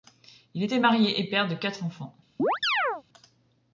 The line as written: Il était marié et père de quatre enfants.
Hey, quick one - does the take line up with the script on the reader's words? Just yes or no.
yes